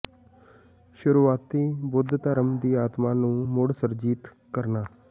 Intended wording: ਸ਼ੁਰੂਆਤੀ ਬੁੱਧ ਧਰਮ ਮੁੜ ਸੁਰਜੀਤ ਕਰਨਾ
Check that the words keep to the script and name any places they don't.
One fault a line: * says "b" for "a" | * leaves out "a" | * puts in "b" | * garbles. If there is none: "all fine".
* puts in "ਦੀ ਆਤਮਾ ਨੂੰ"